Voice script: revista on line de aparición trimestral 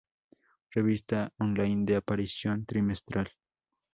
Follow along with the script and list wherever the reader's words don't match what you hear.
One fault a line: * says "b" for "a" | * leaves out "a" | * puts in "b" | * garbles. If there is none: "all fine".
all fine